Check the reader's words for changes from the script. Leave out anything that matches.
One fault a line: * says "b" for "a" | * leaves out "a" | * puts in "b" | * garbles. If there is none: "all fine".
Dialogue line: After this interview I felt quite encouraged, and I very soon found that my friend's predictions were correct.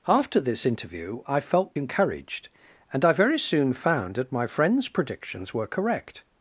* leaves out "quite"